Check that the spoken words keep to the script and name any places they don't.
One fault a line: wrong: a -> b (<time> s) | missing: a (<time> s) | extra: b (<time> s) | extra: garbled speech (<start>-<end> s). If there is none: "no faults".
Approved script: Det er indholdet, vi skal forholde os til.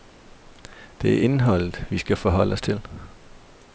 no faults